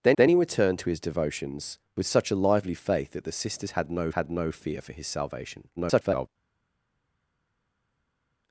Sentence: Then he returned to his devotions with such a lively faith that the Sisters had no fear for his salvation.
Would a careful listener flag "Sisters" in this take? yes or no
no